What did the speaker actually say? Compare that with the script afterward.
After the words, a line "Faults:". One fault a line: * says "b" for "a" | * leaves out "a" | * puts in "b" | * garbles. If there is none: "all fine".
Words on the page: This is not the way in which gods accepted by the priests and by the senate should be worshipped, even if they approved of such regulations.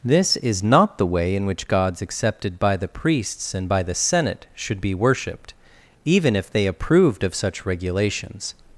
This is not the way in which gods accepted by the priests and by the senate should be worshipped, even if they approved of such regulations.
Faults:
all fine